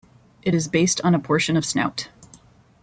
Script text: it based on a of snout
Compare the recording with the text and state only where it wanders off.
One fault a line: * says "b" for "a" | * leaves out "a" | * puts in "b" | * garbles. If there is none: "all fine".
* puts in "is"
* puts in "portion"